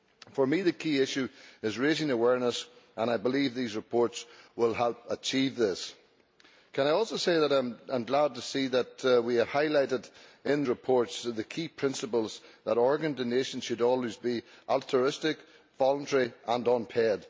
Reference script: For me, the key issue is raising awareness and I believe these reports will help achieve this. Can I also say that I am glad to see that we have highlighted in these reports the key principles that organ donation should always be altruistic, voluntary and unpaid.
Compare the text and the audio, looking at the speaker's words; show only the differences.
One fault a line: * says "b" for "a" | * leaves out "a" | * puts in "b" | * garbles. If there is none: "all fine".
* leaves out "these"